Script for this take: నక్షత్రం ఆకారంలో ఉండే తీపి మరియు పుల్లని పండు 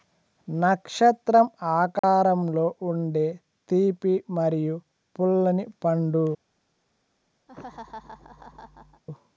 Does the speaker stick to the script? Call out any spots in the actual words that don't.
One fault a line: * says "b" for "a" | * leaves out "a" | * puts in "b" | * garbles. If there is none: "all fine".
all fine